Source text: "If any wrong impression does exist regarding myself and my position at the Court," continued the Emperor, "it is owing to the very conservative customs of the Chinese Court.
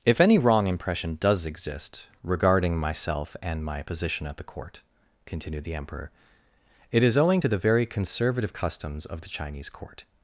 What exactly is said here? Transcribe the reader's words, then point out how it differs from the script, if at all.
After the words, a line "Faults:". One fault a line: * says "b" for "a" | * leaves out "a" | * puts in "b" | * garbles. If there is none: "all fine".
"If any wrong impression does exist regarding myself and my position at the Court," continued the Emperor, "it is owing to the very conservative customs of the Chinese Court.
Faults:
all fine